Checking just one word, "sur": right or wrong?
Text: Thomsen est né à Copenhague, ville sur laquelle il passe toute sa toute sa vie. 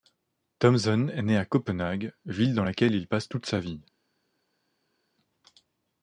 wrong